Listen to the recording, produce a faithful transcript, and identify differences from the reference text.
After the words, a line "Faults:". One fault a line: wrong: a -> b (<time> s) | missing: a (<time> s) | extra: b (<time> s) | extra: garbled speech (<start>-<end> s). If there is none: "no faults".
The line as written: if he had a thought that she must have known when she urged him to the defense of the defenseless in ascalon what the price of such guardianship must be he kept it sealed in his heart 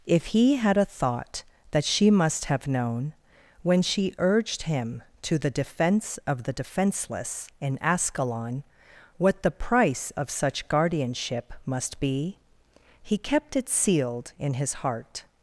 if he had a thought that she must have known when she urged him to the defense of the defenseless in ascalon what the price of such guardianship must be he kept it sealed in his heart
Faults:
no faults